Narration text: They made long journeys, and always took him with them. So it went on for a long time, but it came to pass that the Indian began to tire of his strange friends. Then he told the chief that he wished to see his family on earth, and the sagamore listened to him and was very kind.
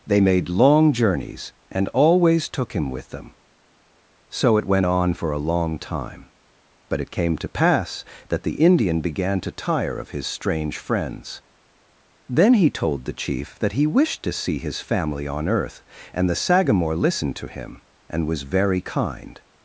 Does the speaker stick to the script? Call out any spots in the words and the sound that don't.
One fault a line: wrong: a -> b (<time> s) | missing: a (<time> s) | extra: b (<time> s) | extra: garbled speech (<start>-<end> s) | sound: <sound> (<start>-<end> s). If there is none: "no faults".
no faults